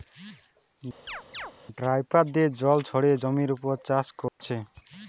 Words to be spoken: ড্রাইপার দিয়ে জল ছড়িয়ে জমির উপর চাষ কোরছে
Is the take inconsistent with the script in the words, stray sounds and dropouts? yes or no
yes